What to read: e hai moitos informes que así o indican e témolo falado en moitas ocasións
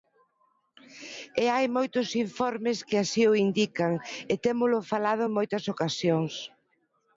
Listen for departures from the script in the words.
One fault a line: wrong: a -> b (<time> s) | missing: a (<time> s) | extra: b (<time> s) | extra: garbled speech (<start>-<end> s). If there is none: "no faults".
no faults